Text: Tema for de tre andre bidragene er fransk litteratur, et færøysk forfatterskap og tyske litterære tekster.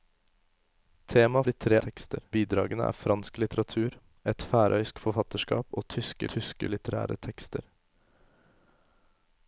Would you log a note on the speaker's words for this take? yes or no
yes